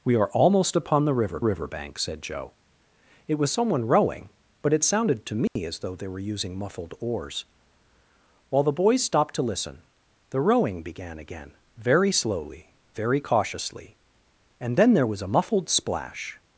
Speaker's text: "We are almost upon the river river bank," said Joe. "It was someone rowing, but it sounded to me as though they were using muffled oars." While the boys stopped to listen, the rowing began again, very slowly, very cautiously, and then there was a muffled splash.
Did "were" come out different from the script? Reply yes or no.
no